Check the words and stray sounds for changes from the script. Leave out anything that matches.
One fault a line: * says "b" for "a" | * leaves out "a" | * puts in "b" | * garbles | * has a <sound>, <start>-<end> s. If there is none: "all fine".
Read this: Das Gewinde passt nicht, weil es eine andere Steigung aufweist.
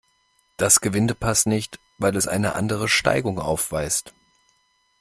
all fine